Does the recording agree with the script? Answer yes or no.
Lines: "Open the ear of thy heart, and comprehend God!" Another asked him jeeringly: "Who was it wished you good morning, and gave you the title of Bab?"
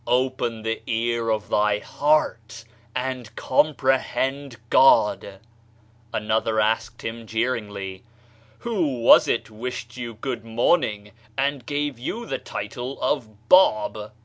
yes